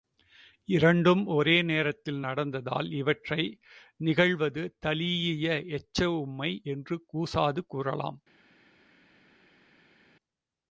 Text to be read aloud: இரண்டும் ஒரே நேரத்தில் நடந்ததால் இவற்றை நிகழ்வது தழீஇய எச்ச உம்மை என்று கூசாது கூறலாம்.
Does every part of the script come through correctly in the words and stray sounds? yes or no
yes